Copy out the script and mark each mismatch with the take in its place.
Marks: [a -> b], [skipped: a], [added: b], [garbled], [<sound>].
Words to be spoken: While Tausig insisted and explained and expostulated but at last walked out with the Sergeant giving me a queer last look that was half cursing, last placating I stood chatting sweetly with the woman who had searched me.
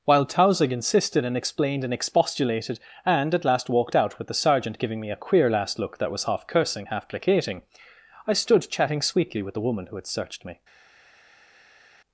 While Tausig insisted and explained and expostulated [but -> and] at last walked out with the Sergeant giving me a queer last look that was half cursing, [last -> half] placating I stood chatting sweetly with the woman who had searched me.